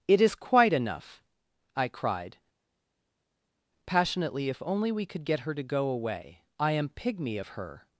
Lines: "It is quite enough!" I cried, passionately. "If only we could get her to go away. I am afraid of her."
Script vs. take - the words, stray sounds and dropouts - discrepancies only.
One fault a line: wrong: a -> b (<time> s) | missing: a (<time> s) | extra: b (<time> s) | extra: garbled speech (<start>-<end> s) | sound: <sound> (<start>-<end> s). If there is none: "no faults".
wrong: afraid -> pygmy (6.9 s)